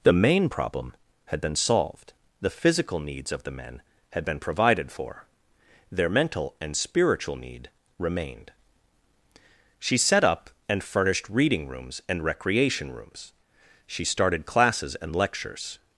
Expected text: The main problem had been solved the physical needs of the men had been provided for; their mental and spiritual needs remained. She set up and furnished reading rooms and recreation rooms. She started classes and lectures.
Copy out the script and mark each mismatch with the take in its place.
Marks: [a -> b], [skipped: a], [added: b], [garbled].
The main problem had been solved the physical needs of the men had been provided for; their mental and spiritual [needs -> need] remained. She set up and furnished reading rooms and recreation rooms. She started classes and lectures.